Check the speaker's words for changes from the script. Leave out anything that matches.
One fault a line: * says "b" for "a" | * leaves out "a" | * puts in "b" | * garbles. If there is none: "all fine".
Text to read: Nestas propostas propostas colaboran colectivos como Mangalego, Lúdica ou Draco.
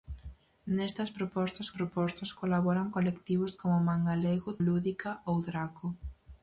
all fine